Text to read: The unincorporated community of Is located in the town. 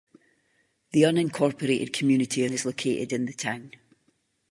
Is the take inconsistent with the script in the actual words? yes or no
no